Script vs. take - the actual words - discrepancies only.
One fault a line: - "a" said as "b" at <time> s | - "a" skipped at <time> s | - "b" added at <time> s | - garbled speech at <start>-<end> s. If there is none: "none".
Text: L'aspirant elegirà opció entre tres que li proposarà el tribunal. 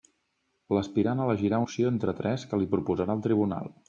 none